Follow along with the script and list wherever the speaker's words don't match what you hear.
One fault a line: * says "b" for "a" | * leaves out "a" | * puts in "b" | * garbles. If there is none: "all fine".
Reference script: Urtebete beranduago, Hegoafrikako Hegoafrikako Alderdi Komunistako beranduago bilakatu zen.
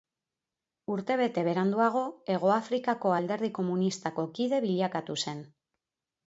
* leaves out "Hegoafrikako"
* says "kide" for "beranduago"